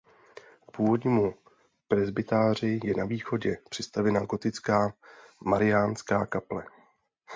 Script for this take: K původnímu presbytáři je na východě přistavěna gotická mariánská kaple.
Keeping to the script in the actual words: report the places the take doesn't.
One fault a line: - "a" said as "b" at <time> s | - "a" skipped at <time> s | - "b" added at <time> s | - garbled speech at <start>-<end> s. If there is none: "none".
none